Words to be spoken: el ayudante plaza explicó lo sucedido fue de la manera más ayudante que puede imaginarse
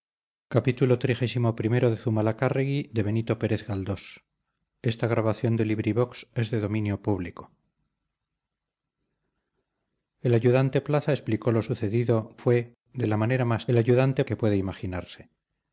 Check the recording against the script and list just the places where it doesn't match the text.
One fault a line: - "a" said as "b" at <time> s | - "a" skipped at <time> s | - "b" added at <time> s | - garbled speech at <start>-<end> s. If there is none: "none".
none